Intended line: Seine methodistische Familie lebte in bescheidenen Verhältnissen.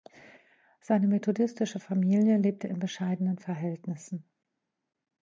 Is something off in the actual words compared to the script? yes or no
no